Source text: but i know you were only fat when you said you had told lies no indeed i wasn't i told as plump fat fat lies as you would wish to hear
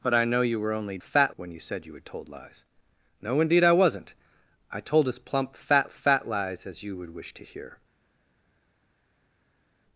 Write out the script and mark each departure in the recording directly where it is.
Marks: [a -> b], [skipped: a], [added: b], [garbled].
but i know you were only fat when you said you had told lies no indeed i wasn't i told as plump fat fat lies as you would wish to hear